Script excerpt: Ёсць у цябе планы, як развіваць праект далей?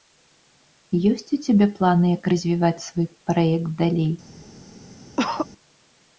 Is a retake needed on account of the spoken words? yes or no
yes